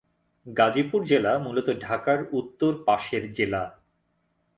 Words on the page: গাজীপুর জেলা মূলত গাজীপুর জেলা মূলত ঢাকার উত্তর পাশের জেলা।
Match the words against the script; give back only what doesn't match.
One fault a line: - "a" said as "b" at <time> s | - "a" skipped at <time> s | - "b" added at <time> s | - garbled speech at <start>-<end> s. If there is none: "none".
- "গাজীপুর জেলা মূলত" skipped at 1.7 s